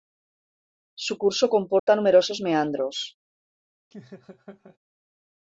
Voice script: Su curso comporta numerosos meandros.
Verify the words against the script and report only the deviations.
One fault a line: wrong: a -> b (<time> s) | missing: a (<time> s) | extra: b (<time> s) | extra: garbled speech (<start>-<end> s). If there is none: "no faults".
no faults